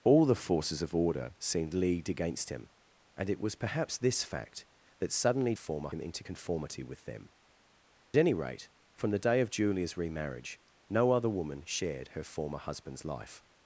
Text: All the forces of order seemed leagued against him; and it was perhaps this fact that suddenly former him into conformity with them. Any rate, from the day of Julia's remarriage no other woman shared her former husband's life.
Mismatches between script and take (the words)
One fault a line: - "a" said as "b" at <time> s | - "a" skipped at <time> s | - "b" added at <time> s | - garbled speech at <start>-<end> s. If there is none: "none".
none